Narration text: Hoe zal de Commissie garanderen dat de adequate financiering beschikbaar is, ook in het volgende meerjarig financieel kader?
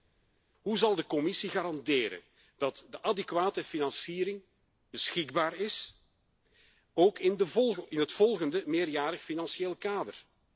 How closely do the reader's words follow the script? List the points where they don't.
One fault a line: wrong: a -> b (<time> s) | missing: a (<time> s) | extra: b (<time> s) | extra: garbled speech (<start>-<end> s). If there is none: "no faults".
no faults